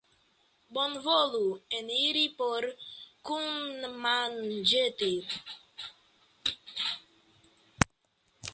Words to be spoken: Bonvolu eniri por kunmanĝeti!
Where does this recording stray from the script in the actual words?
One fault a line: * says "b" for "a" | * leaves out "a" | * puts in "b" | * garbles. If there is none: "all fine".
all fine